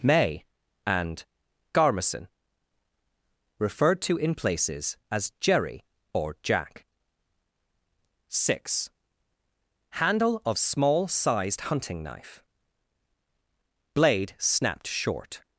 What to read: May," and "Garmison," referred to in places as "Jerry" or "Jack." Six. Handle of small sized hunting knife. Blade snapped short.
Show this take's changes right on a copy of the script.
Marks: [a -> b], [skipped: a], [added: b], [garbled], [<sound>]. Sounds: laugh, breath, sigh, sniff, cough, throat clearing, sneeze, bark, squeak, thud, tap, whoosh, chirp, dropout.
May," and "Garmison," referred to in places as "Jerry" or "Jack." Six. Handle of small sized hunting knife. Blade snapped short.